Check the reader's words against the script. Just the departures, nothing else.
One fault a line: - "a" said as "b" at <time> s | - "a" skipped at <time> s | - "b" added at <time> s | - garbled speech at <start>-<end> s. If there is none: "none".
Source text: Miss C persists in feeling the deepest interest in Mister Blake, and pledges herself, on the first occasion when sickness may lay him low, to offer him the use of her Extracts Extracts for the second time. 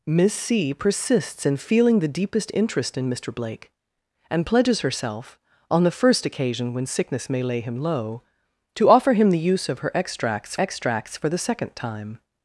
none